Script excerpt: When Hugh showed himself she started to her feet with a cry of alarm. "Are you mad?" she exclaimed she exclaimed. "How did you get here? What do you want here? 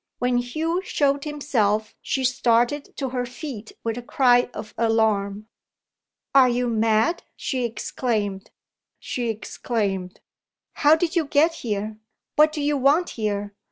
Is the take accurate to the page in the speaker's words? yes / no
yes